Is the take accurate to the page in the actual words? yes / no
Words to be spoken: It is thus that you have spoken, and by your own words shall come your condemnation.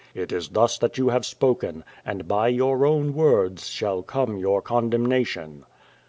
yes